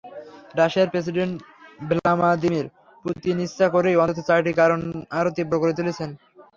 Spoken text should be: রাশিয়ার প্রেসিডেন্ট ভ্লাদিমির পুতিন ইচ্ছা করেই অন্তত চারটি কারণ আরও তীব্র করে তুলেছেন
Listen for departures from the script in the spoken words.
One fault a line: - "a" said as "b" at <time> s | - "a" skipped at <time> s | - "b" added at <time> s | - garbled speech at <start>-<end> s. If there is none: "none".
none